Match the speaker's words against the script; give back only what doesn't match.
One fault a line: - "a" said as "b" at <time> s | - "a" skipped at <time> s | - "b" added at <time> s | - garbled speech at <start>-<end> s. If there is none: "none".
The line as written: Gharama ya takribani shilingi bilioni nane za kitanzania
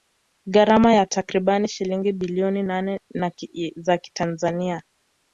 none